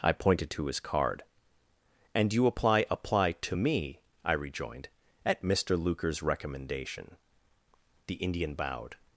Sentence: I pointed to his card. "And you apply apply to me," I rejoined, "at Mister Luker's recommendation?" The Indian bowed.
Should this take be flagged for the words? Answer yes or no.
no